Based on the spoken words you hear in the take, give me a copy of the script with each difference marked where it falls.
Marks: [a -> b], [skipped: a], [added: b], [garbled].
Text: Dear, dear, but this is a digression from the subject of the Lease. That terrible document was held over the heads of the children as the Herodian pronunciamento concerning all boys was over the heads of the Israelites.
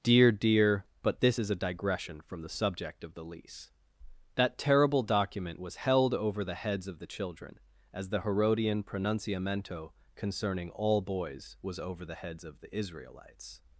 Dear, dear, but this is a digression from the subject of the Lease. That terrible document was held over the heads of the children as the Herodian pronunciamento concerning all boys was over the heads of the Israelites.